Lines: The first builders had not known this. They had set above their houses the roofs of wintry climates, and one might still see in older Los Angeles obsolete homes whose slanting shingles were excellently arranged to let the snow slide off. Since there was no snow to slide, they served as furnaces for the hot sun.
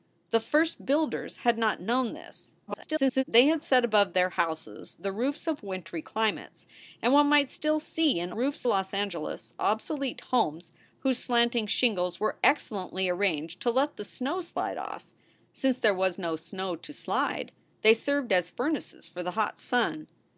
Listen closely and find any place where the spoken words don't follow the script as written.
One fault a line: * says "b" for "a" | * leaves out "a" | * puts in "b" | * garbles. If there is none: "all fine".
* garbles
* says "roofs" for "older"